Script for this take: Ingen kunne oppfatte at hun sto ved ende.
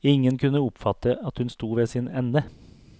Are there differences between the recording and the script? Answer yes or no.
yes